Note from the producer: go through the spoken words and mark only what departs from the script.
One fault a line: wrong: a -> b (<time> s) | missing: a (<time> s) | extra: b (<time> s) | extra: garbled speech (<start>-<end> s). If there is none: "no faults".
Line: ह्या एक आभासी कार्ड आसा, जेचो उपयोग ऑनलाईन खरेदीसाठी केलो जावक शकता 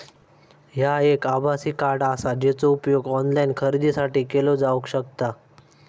no faults